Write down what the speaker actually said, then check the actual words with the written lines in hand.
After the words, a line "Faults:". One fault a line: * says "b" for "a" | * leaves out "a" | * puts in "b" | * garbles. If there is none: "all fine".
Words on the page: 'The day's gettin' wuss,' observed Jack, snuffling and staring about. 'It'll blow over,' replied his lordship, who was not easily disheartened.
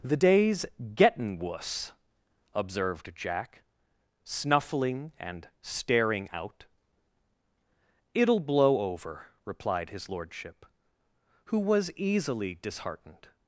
'The day's gettin' wuss,' observed Jack, snuffling and staring out. 'It'll blow over,' replied his lordship, who was easily disheartened.
Faults:
* says "out" for "about"
* leaves out "not"